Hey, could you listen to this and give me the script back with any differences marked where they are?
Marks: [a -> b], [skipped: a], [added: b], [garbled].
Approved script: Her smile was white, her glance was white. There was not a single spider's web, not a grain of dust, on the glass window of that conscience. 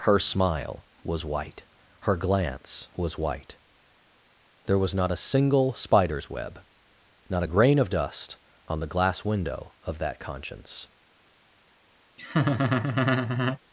Her smile was white, her glance was white. There was not a single spider's web, not a grain of dust, on the glass window of that conscience.